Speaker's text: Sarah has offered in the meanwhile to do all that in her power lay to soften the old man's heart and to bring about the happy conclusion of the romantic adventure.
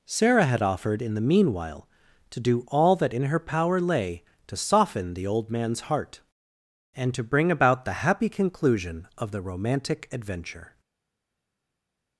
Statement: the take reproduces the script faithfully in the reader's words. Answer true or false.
false